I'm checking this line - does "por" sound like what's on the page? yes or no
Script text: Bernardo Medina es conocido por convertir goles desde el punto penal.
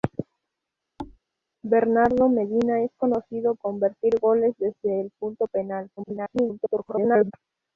no